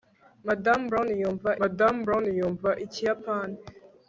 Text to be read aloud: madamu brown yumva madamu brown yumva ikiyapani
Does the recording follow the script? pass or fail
pass